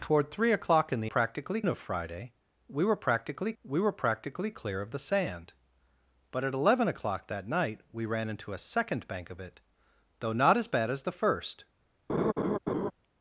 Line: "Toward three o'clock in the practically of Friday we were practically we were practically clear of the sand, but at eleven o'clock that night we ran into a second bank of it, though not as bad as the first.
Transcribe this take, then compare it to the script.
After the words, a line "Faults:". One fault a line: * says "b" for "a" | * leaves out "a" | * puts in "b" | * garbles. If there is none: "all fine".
"Toward three o'clock in the practically of Friday we were practically we were practically clear of the sand, but at eleven o'clock that night we ran into a second bank of it, though not as bad as the first.
Faults:
all fine